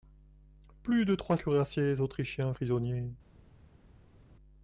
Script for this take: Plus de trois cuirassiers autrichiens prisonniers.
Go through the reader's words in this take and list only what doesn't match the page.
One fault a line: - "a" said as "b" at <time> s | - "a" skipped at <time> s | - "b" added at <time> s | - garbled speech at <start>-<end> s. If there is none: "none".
none